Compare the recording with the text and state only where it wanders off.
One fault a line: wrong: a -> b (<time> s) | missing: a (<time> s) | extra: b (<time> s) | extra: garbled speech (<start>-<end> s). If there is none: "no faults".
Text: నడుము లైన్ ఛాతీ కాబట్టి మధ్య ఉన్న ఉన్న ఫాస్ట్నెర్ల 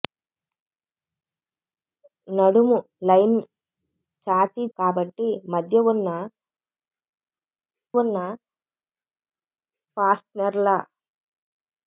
no faults